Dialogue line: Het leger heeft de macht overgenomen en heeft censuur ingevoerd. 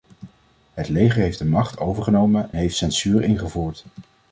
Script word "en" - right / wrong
wrong